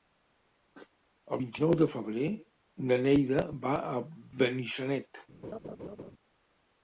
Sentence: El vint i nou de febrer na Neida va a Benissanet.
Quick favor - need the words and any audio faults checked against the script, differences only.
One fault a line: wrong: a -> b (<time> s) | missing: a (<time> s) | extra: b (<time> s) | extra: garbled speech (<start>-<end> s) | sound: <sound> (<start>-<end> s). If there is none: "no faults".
sound: laugh (5.4-6.1 s)